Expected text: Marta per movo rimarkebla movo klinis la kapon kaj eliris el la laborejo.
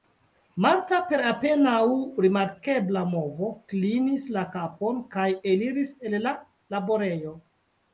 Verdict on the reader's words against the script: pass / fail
fail